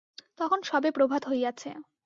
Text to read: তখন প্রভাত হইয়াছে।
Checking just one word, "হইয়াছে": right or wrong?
right